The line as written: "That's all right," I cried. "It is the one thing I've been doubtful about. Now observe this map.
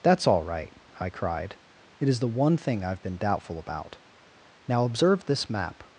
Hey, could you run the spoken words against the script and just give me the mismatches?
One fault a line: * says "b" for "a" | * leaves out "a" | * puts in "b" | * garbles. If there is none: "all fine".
all fine